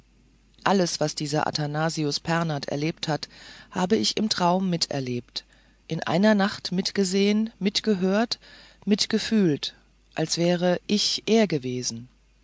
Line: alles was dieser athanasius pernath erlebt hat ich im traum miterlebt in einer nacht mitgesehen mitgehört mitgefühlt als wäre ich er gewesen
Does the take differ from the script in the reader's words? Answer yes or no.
yes